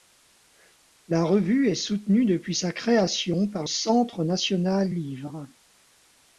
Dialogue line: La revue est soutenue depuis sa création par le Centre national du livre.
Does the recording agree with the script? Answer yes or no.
no